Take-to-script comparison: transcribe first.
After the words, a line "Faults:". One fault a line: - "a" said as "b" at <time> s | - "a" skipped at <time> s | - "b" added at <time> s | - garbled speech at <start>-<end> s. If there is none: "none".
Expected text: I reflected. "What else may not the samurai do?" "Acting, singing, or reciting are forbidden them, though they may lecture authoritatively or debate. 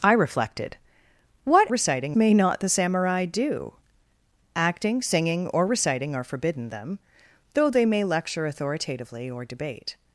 I reflected. "What reciting may not the samurai do?" "Acting, singing, or reciting are forbidden them, though they may lecture authoritatively or debate.
Faults:
- "else" said as "reciting" at 1.7 s